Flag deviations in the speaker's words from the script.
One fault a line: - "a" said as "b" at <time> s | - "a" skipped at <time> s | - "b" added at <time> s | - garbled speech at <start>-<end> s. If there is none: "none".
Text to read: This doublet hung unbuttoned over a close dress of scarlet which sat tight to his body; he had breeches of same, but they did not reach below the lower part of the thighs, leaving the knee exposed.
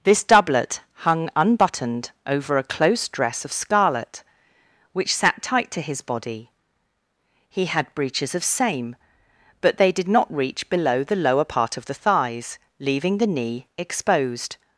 none